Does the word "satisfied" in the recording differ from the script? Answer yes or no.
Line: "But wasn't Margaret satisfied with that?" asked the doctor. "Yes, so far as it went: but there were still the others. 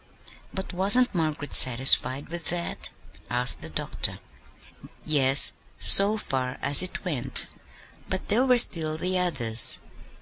no